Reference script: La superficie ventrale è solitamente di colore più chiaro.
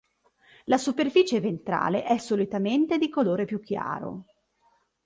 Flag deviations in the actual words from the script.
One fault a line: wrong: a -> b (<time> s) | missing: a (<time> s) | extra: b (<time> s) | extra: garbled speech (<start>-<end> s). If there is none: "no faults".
no faults